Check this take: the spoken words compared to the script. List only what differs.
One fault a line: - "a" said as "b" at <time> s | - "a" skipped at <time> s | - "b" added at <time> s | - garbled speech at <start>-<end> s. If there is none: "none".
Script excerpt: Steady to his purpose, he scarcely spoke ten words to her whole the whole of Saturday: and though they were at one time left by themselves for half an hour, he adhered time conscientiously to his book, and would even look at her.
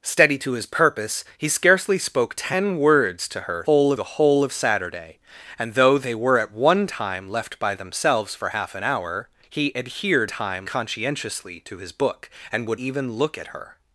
none